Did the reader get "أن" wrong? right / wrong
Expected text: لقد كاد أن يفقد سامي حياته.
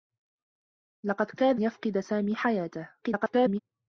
wrong